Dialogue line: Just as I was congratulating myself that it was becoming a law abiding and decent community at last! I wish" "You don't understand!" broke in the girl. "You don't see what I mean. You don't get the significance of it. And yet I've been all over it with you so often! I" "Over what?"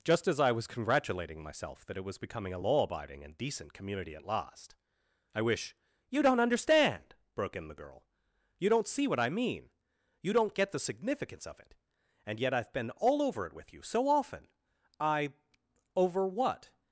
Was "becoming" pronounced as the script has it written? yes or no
yes